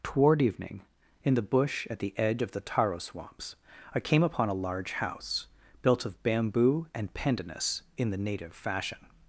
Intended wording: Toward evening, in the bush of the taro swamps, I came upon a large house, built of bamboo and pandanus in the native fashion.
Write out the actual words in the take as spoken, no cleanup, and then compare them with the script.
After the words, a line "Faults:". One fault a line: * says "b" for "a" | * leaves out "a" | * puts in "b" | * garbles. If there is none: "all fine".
Toward evening, in the bush at the edge of the taro swamps, I came upon a large house, built of bamboo and pandanus in the native fashion.
Faults:
* puts in "at the edge"